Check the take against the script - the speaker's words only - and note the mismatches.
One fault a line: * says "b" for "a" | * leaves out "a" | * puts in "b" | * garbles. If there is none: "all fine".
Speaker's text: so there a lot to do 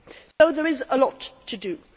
* puts in "is"